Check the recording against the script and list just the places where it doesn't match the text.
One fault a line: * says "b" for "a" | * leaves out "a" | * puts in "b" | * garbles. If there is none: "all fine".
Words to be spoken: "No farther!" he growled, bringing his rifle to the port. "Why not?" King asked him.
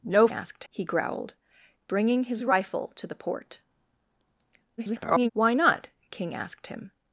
* says "asked" for "farther"
* garbles